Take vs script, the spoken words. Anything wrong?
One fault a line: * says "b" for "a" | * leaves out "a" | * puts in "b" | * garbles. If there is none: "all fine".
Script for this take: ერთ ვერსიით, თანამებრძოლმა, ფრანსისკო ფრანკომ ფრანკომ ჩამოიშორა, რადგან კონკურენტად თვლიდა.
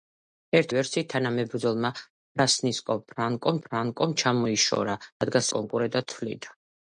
all fine